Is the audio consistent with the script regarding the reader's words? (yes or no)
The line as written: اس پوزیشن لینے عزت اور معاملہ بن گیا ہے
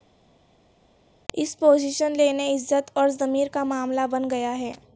no